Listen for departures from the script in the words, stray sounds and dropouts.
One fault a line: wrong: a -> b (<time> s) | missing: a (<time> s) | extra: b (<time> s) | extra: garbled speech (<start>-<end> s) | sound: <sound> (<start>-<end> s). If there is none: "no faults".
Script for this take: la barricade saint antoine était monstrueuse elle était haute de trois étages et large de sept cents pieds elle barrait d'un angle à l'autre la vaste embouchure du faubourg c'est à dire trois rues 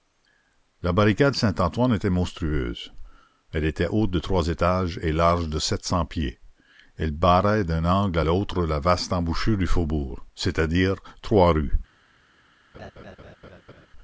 sound: laugh (12.7-13.9 s)